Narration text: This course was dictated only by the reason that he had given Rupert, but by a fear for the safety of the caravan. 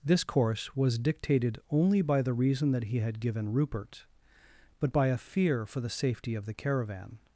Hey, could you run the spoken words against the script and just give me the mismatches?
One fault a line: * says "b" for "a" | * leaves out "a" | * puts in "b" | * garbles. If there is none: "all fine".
all fine